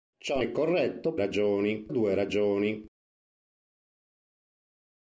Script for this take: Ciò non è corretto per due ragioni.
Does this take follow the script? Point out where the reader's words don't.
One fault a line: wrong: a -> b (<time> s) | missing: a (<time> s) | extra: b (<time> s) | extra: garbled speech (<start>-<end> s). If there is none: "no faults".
missing: non (0.4 s)
wrong: per -> ragioni (1.2 s)